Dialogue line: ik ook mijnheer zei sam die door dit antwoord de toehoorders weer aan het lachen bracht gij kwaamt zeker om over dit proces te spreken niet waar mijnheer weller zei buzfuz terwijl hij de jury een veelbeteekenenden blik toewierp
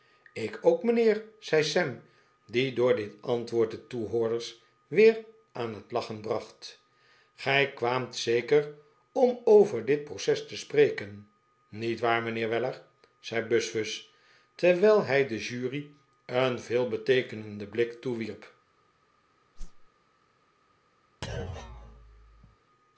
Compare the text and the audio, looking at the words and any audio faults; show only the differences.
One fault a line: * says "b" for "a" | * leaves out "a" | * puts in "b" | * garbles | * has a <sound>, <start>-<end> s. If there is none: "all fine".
* has a whoosh, 19.6-19.9 s
* has a thud, 21.2-22.6 s